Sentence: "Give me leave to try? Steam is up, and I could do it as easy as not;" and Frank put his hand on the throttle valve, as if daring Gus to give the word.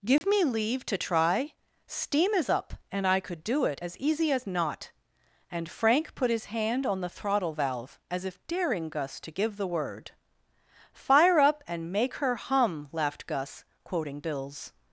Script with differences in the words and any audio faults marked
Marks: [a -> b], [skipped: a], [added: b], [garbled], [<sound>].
"Give [dropout] me leave to try? Steam is up, and I could do it as easy as not;" and Frank put his hand on the throttle valve, as if daring Gus to give the word. [added: Fire up and make her hum laughed Gus quoting Bill's]